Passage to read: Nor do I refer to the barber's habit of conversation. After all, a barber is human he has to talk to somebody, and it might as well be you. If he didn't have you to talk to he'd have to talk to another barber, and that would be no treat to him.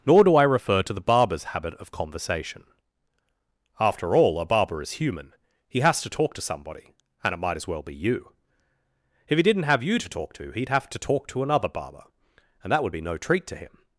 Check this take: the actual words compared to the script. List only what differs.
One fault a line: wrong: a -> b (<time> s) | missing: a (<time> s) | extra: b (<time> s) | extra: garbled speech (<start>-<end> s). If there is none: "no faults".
no faults